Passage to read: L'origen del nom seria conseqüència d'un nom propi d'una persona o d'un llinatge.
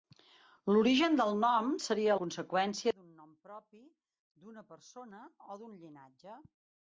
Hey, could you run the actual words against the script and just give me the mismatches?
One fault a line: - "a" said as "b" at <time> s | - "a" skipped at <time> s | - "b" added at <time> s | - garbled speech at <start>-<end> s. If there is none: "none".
none